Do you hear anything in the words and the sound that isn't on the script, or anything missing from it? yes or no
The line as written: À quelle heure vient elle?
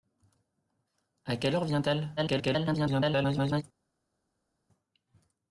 yes